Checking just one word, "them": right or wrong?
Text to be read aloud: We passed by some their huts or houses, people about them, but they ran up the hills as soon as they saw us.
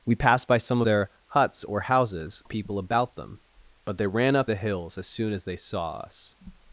right